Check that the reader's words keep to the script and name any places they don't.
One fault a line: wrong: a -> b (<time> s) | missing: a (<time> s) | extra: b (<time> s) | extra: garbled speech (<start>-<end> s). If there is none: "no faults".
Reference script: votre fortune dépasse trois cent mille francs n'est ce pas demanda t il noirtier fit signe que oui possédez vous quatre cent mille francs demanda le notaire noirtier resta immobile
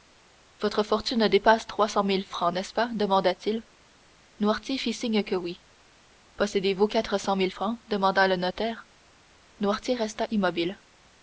no faults